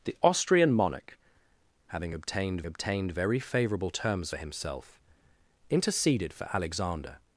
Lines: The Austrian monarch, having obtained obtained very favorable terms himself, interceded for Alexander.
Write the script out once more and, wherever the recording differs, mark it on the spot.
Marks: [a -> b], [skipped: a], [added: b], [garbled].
The Austrian monarch, having obtained obtained very favorable terms himself, interceded for Alexander.